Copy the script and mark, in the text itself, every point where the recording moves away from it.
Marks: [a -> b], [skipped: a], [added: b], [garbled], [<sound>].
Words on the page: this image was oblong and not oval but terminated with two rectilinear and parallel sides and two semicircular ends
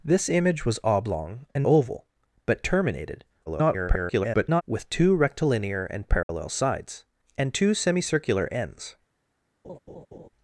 this image was oblong and [skipped: not] oval but terminated [garbled] with two rectilinear and parallel [dropout] sides and two semicircular ends [laugh]